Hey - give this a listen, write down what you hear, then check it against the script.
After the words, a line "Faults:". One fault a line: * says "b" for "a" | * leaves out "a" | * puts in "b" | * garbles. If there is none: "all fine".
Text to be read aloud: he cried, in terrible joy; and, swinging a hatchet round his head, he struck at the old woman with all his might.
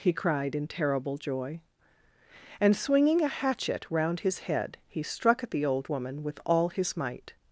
he cried, in terrible joy; and, swinging a hatchet round his head, he struck at the old woman with all his might.
Faults:
all fine